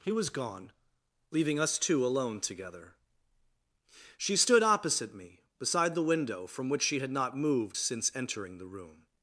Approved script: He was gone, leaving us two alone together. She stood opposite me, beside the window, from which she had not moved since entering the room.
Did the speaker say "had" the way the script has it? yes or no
yes